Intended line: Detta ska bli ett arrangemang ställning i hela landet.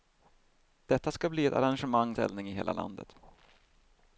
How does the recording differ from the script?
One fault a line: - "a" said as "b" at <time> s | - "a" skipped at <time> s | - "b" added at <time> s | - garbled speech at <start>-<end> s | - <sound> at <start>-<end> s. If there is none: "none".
none